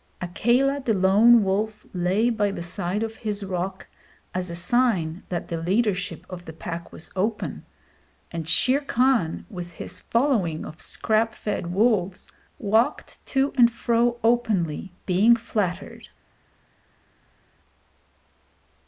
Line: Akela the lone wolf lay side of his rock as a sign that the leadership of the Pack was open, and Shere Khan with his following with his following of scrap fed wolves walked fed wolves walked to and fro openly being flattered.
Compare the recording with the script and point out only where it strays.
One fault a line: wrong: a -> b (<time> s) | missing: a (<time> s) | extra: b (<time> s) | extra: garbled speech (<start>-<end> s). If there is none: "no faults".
extra: by the (2.3 s)
missing: with his following (10.6 s)
missing: fed wolves walked (13.2 s)